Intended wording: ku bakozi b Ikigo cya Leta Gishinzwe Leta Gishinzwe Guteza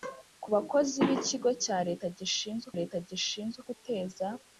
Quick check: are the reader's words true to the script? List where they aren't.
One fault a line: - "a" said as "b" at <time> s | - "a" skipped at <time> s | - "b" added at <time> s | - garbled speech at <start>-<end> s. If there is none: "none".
none